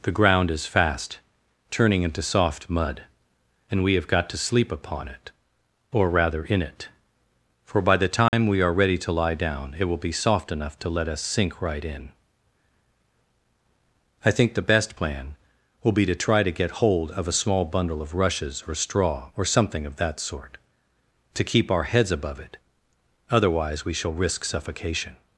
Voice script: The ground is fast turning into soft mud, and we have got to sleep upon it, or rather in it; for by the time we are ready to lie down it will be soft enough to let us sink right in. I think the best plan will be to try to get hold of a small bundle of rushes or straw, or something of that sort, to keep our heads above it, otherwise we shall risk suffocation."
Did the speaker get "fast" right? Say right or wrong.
right